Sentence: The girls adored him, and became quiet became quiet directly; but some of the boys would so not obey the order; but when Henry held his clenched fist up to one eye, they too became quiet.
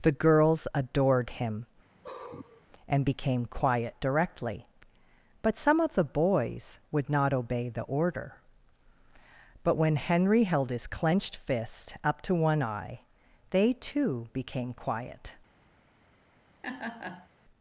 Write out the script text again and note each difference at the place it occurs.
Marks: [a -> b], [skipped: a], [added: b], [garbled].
The girls adored him, and became quiet [skipped: became quiet] directly; but some of the boys would [skipped: so] not obey the order; but when Henry held his clenched fist up to one eye, they too became quiet.